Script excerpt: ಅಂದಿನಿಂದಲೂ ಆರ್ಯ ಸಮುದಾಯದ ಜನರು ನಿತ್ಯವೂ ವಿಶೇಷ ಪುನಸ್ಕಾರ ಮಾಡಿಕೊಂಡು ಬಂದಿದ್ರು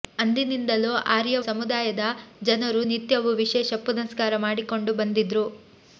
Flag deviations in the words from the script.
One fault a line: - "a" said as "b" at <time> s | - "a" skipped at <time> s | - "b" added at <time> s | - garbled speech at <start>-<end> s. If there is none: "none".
none